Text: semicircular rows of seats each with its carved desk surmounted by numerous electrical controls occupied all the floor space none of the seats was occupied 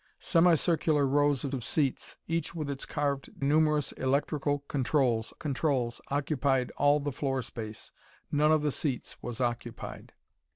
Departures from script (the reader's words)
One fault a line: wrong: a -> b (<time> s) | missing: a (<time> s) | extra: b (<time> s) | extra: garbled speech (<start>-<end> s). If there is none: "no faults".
extra: of (1.5 s)
missing: desk surmounted by (3.4 s)
extra: controls (5.4 s)